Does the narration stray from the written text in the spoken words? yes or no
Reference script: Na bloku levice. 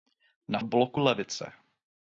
no